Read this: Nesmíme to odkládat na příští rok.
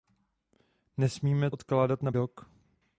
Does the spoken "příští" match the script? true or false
false